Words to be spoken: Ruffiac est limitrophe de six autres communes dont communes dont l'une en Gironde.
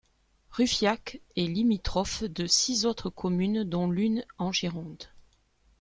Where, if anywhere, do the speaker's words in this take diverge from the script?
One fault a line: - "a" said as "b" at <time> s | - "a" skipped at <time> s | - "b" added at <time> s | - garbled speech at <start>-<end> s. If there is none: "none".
- "communes dont" skipped at 3.9 s